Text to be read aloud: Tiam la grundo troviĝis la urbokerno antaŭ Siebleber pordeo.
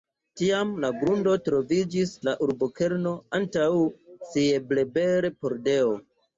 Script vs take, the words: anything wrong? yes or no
no